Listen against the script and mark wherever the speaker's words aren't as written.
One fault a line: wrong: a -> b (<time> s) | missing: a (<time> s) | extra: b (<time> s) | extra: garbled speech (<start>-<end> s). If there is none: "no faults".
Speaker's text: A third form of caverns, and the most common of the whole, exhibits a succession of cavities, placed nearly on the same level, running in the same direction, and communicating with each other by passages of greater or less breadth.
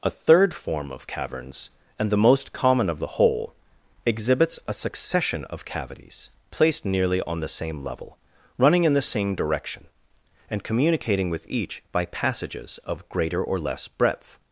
missing: other (11.8 s)